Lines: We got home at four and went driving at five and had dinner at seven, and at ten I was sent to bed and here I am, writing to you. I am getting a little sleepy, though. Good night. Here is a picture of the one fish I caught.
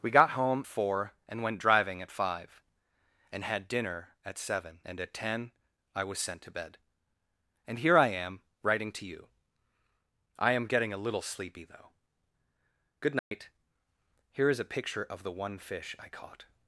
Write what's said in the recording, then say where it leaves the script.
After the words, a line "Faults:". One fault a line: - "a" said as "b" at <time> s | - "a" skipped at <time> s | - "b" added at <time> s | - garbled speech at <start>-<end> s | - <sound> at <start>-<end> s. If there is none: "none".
We got home four and went driving at five and had dinner at seven, and at ten I was sent to bed and here I am, writing to you. I am getting a little sleepy, though. Good night. Here is a picture of the one fish I caught.
Faults:
- "at" skipped at 0.6 s
- dropout at 13.2-13.3 s